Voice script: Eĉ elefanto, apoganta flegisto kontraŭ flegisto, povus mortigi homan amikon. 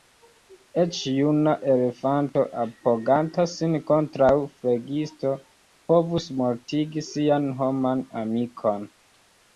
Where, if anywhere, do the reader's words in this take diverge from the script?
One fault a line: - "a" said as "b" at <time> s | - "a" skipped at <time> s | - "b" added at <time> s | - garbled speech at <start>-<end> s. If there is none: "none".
- "juna" added at 1.1 s
- "flegisto" said as "sin" at 3.5 s
- "sian" added at 7.1 s